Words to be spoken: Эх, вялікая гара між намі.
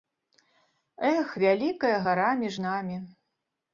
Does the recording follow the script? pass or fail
pass